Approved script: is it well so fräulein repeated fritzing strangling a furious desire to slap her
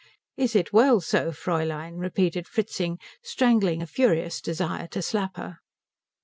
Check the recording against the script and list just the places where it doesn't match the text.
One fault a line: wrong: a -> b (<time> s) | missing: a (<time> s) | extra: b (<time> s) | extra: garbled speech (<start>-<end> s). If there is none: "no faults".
no faults